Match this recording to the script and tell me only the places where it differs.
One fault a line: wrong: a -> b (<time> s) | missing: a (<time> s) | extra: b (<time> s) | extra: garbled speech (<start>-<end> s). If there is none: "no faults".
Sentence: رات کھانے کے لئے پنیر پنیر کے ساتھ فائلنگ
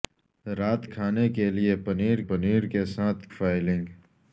no faults